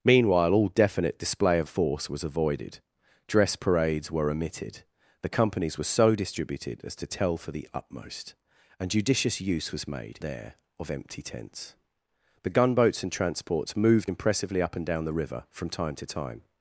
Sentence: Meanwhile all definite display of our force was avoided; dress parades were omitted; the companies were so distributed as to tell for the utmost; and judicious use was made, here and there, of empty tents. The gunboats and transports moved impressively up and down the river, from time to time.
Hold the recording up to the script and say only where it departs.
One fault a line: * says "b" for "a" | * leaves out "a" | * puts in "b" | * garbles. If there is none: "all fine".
* leaves out "our"
* leaves out "here and"